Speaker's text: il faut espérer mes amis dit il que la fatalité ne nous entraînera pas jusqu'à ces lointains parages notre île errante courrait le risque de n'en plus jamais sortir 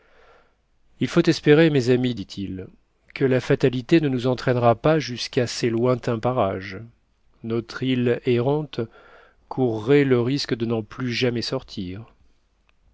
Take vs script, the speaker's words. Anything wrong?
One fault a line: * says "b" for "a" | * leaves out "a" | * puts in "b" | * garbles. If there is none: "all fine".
all fine